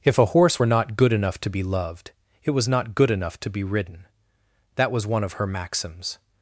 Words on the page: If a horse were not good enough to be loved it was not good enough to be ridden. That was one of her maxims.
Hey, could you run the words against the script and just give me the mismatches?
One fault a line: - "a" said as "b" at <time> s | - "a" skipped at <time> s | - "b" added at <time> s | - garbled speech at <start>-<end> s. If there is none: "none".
none